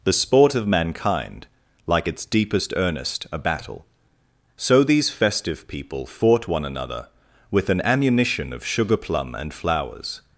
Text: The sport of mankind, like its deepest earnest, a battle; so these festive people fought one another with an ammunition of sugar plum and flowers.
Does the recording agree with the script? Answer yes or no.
yes